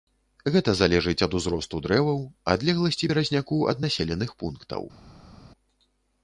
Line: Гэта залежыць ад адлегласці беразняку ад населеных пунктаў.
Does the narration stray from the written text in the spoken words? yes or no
yes